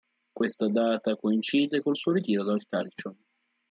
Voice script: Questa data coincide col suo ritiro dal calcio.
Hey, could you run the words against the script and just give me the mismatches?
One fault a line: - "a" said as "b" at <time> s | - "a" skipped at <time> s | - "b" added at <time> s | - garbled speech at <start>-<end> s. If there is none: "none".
none